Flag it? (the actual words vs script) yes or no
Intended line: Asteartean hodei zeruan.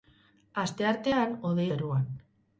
no